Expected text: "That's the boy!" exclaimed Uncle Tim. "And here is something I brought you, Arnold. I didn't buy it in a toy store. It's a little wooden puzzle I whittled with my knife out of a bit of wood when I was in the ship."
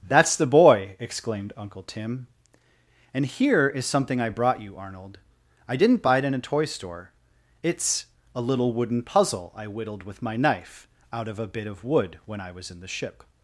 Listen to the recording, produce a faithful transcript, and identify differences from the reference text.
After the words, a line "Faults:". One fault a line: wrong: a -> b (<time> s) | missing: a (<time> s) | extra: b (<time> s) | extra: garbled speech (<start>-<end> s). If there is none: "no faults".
"That's the boy!" exclaimed Uncle Tim. "And here is something I brought you, Arnold. I didn't buy it in a toy store. It's a little wooden puzzle I whittled with my knife out of a bit of wood when I was in the ship."
Faults:
no faults